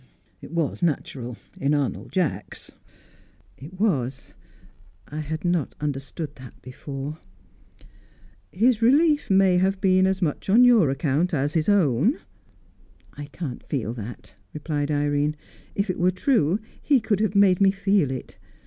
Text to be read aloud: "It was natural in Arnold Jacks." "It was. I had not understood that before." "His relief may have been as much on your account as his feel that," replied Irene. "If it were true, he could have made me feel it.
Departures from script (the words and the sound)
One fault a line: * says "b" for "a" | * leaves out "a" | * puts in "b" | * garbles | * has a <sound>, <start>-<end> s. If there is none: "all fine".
* puts in "own I can't"